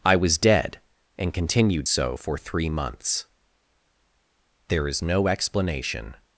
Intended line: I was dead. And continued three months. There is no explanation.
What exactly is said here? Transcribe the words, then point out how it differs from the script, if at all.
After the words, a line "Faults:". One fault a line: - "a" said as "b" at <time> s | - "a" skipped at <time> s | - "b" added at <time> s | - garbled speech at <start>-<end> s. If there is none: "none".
I was dead. And continued so for three months. There is no explanation.
Faults:
- "so for" added at 1.8 s